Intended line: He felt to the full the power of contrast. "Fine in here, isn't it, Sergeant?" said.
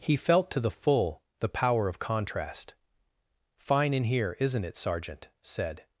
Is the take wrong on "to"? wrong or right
right